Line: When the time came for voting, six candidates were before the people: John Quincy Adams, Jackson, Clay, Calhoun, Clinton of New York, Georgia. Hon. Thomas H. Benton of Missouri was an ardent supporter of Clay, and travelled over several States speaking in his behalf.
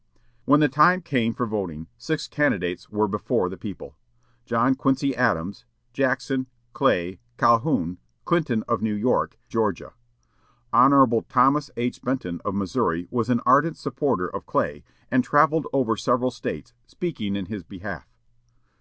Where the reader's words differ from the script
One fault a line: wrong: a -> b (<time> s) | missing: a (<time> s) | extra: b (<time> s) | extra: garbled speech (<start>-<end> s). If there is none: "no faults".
no faults